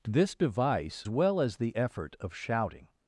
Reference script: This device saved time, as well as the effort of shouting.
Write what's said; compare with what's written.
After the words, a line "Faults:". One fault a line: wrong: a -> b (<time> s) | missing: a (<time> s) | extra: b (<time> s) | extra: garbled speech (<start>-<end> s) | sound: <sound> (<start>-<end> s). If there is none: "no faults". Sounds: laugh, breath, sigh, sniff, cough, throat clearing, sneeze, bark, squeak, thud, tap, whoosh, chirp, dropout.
This device well as the effort of shouting.
Faults:
missing: saved time as (1.1 s)